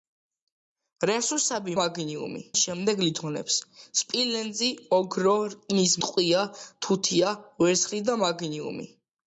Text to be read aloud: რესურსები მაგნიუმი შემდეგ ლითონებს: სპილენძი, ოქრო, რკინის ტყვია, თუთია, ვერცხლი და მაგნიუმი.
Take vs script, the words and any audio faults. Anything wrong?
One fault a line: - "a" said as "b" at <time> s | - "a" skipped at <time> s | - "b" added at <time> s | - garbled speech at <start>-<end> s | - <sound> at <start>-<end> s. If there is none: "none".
none